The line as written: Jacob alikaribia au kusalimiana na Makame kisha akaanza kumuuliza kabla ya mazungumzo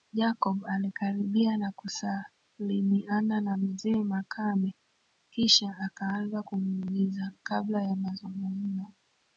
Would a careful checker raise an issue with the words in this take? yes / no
yes